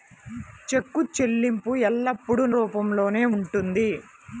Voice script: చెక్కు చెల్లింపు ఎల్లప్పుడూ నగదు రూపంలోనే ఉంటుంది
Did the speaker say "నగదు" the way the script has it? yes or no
no